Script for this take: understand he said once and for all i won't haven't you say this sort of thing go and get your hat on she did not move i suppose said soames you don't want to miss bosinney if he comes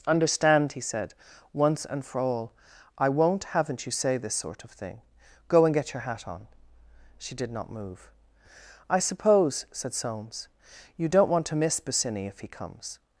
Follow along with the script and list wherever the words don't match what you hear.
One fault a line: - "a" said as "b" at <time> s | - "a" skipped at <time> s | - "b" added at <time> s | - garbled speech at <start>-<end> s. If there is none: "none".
none